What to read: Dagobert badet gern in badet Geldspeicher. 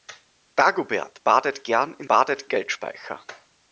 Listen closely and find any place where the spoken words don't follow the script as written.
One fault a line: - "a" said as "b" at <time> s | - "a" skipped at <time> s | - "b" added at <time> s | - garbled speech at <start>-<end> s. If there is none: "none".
none